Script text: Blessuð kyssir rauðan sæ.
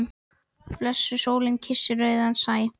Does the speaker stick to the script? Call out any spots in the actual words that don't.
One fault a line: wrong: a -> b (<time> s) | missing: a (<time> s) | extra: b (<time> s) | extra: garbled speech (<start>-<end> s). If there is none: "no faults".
extra: sólin (1.2 s)